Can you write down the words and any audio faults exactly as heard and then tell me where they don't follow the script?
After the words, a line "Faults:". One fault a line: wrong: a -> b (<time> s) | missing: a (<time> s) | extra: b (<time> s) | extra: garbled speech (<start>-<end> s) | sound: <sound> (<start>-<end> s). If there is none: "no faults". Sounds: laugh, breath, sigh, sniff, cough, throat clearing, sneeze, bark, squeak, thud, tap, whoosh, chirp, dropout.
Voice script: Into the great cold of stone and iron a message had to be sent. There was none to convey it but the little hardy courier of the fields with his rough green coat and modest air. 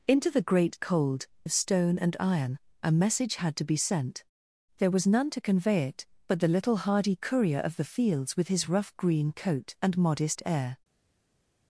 Into the great cold of stone and iron a message had to be sent. There was none to convey it but the little hardy courier of the fields with his rough green coat and modest air.
Faults:
no faults